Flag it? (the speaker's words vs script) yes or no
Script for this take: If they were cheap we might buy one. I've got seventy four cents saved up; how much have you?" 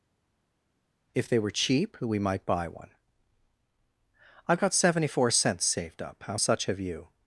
yes